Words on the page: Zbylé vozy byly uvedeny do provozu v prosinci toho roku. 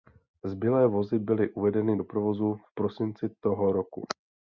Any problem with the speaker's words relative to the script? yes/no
no